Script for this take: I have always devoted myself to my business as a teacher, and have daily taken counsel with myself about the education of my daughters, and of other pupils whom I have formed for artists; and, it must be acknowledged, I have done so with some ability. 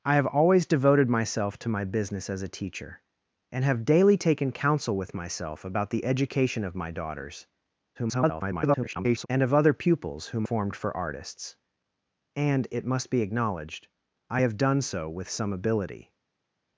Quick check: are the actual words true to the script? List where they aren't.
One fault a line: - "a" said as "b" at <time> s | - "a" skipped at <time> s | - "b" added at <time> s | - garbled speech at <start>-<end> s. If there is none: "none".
- garbled speech at 7.9-9.3 s
- "I have" skipped at 10.4 s